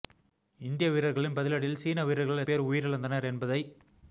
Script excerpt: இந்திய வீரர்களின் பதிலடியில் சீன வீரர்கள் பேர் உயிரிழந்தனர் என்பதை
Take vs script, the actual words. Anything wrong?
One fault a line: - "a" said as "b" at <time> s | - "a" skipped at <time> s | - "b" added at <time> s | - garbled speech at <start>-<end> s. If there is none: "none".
none